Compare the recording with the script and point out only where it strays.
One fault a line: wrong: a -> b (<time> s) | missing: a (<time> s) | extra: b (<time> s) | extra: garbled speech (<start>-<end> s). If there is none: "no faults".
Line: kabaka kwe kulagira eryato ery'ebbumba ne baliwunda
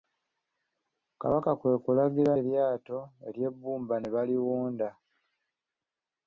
no faults